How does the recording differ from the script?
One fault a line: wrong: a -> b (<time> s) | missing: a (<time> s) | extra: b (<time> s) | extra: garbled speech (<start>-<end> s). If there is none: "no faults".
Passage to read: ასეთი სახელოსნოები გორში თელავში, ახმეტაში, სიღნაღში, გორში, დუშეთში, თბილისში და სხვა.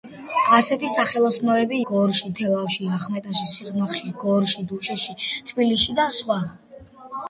no faults